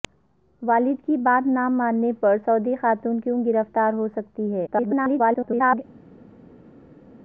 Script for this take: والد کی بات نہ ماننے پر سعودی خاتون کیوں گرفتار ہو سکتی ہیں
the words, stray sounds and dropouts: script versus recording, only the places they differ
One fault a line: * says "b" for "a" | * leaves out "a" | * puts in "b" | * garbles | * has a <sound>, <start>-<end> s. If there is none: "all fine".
* garbles